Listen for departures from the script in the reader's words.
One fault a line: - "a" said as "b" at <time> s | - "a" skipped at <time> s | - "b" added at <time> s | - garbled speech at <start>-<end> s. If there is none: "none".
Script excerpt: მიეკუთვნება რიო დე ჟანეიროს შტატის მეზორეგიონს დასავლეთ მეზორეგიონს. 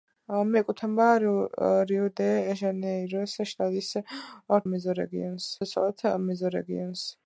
none